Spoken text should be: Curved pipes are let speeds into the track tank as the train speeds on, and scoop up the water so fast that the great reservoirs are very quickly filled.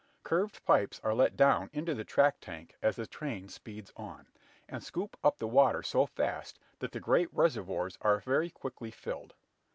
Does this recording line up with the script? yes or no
no